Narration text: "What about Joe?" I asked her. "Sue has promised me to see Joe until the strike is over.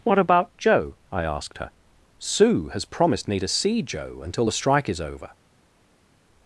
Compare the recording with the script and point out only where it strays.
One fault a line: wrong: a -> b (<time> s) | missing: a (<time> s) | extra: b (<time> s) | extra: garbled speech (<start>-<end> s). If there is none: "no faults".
no faults